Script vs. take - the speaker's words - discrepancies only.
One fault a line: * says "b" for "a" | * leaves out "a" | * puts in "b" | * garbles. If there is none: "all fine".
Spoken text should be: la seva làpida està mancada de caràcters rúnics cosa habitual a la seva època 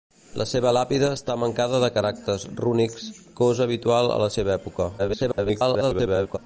* garbles